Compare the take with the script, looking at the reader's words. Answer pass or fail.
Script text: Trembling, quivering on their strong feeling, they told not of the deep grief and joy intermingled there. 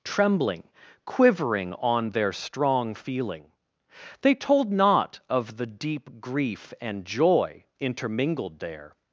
pass